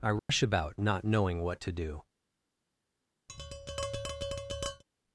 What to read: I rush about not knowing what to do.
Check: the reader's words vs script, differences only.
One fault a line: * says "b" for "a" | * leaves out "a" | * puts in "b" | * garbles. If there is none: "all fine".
all fine